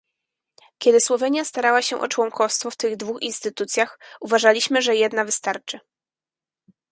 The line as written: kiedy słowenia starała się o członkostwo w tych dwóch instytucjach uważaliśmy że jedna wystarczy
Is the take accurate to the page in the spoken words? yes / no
yes